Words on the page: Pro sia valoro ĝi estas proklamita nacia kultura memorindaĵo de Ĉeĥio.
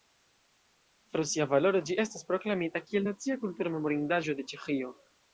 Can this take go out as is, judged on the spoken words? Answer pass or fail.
fail